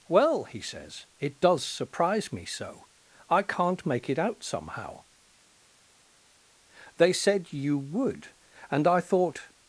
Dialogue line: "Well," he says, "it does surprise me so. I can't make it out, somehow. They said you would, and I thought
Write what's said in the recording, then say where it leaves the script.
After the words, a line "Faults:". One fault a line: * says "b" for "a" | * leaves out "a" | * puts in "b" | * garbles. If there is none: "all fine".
"Well," he says, "it does surprise me so. I can't make it out, somehow. They said you would, and I thought
Faults:
all fine